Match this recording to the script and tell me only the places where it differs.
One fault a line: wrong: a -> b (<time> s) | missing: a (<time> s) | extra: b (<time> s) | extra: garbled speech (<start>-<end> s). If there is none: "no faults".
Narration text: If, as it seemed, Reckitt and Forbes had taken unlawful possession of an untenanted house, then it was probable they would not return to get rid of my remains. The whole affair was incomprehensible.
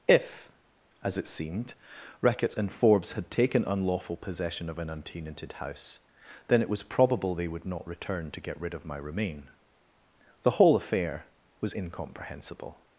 wrong: remains -> remain (9.0 s)